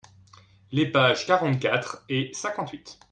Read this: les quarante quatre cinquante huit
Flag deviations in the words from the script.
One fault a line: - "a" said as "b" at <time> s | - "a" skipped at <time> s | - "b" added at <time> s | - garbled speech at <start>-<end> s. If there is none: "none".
- "pages" added at 0.9 s
- "et" added at 2.1 s